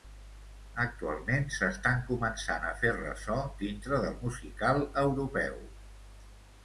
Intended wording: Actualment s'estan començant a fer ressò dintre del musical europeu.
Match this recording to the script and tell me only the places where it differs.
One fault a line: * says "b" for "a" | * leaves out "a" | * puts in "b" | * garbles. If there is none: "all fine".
all fine